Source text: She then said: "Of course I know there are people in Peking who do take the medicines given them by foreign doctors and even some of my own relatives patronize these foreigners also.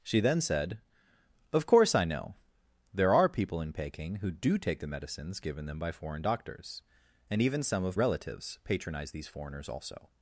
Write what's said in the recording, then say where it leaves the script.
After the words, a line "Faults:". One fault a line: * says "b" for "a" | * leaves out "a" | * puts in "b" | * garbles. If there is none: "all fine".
She then said: "Of course I know there are people in Peking who do take the medicines given them by foreign doctors and even some of relatives patronize these foreigners also.
Faults:
* leaves out "my own"